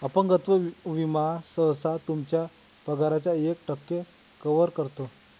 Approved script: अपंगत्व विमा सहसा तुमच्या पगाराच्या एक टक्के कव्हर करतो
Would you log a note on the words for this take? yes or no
no